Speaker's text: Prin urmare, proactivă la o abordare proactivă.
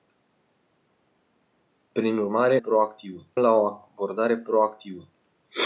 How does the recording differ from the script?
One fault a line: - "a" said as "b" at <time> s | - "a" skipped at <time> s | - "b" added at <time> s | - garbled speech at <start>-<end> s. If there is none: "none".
none